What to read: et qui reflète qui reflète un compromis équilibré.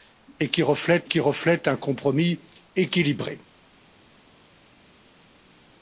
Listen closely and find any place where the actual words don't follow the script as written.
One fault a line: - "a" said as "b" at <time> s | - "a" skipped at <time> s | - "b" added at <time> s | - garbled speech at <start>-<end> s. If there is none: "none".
none